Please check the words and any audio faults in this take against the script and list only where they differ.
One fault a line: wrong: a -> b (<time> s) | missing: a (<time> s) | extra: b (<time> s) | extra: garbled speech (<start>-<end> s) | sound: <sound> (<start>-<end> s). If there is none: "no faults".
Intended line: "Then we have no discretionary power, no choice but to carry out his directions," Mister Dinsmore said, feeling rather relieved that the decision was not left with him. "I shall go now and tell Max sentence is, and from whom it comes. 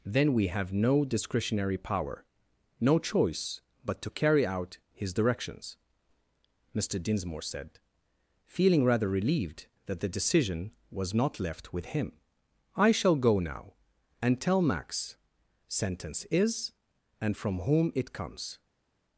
no faults